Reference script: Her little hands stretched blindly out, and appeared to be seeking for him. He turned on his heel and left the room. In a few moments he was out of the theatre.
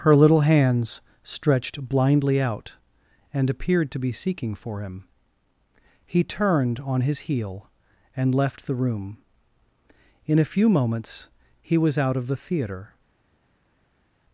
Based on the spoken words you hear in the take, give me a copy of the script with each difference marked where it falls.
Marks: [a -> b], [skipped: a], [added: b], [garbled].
Her little hands stretched blindly out, and appeared to be seeking for him. He turned on his heel and left the room. In a few moments he was out of the theatre.